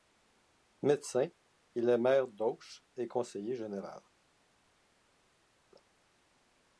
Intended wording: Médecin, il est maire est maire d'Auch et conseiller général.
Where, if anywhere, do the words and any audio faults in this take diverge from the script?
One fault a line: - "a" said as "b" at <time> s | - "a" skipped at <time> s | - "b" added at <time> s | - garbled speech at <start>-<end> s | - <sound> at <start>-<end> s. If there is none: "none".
- "est maire" skipped at 2.3 s